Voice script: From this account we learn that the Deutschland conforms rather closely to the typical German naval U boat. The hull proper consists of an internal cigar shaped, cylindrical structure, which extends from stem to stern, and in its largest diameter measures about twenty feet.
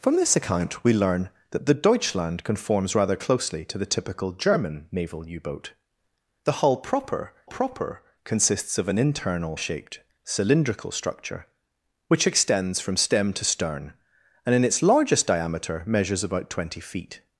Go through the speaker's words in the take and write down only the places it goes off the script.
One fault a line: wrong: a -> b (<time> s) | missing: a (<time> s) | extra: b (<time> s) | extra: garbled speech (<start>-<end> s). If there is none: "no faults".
extra: proper (7.4 s)
missing: cigar (9.6 s)